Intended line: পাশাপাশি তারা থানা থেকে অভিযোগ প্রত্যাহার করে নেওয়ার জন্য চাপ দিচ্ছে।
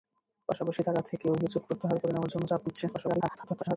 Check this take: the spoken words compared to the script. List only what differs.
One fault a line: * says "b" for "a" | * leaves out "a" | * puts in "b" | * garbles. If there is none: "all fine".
* leaves out "থানা"
* garbles